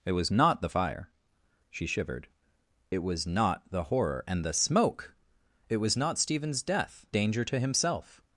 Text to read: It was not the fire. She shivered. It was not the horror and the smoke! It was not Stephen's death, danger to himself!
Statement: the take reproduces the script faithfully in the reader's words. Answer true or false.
true